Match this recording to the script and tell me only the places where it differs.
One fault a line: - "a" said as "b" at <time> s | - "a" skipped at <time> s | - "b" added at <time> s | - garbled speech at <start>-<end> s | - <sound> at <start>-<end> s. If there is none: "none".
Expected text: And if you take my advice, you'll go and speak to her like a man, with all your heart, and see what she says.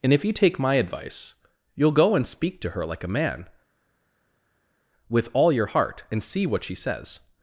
none